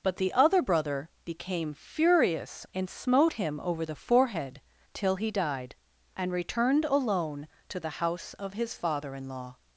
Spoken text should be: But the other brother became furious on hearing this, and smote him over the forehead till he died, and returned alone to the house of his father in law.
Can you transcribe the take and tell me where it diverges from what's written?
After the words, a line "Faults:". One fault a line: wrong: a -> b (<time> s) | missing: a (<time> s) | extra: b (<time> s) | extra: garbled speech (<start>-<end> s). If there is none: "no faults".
But the other brother became furious and smote him over the forehead till he died, and returned alone to the house of his father in law.
Faults:
missing: on hearing this (2.6 s)